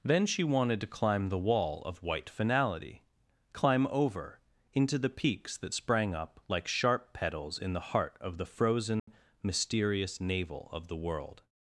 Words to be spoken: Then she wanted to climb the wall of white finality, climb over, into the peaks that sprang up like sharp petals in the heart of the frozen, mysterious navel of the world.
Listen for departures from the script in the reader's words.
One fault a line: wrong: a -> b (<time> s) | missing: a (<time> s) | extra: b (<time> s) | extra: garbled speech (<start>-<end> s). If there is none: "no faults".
no faults